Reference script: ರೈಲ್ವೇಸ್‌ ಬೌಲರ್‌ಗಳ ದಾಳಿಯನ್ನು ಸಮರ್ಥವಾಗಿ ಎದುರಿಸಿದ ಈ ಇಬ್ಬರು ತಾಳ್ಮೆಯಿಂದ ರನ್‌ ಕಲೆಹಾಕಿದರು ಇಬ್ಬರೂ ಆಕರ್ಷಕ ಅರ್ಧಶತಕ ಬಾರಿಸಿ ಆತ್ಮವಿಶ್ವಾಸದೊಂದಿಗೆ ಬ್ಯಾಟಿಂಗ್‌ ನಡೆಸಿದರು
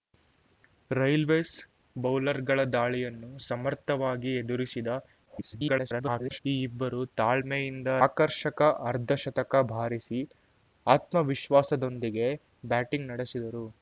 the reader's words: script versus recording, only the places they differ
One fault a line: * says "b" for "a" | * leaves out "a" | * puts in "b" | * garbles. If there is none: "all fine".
* garbles
* leaves out "ರನ್ ಕಲೆಹಾಕಿದರು ಇಬ್ಬರೂ"